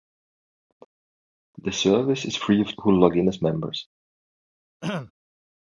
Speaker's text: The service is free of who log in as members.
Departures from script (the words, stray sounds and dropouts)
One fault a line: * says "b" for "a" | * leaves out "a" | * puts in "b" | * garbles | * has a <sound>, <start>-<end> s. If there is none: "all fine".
* has a throat clearing, 4.8-5.1 s